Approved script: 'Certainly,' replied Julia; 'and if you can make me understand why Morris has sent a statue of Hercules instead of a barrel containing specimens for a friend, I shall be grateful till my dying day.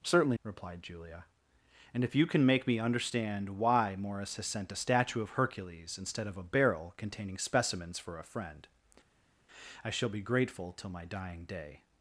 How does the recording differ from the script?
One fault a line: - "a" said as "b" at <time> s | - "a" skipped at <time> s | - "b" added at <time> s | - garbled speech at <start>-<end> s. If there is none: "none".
none